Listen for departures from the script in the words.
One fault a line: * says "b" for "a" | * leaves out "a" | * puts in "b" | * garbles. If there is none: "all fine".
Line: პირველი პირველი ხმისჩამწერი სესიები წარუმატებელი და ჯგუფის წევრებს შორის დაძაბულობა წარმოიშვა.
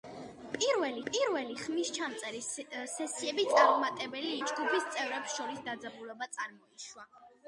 all fine